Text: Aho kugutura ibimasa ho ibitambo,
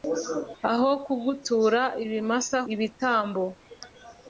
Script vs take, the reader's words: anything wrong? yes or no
yes